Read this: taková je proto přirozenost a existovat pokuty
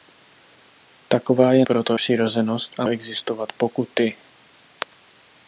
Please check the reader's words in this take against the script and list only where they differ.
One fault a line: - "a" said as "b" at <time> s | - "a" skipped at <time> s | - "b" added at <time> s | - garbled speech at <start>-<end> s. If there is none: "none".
none